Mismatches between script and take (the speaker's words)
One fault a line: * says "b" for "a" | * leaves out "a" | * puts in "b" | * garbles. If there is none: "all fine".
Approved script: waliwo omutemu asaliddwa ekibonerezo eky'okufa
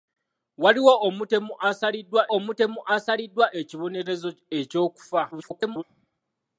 * puts in "omutemu asaliddwa"
* garbles